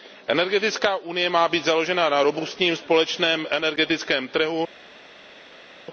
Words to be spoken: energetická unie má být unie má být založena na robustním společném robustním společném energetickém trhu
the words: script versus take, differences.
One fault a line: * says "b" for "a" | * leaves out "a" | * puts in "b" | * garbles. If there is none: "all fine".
* leaves out "unie má být"
* leaves out "robustním společném"